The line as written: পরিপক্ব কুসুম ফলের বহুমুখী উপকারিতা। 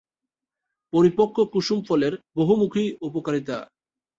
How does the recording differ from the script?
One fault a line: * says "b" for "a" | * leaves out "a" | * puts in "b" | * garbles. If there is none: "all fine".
all fine